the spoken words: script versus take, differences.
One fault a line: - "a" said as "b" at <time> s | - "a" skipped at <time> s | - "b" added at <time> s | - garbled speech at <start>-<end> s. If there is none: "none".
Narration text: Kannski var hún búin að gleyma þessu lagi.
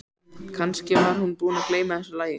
none